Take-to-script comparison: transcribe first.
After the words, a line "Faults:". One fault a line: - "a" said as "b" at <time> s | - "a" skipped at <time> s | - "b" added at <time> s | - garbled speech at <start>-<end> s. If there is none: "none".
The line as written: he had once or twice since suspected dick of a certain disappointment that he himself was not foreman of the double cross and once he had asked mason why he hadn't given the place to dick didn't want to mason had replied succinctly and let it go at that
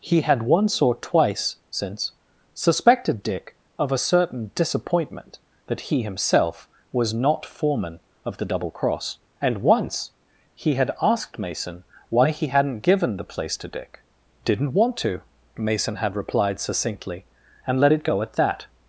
he had once or twice since suspected dick of a certain disappointment that he himself was not foreman of the double cross and once he had asked mason why he hadn't given the place to dick didn't want to mason had replied succinctly and let it go at that
Faults:
none